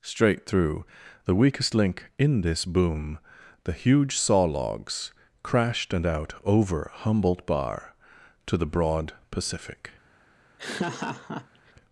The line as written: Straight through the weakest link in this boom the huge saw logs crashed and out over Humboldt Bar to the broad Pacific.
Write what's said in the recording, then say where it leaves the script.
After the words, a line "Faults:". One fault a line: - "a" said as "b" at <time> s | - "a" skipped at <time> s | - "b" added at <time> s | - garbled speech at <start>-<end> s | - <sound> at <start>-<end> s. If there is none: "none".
Straight through the weakest link in this boom the huge saw logs crashed and out over Humboldt Bar to the broad Pacific.
Faults:
- laugh at 10.6-11.7 s